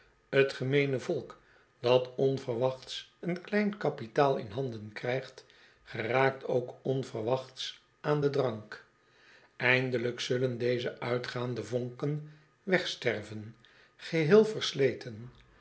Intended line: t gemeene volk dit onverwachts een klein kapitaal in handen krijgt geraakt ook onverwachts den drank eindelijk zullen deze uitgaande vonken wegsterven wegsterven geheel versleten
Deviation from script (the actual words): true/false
true